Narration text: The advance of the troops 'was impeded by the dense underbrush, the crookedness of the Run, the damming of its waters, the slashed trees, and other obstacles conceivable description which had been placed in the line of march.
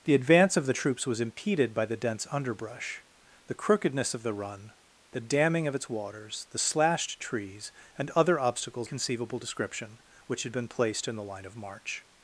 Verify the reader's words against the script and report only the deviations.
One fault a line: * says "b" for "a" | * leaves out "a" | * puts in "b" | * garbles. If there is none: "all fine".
all fine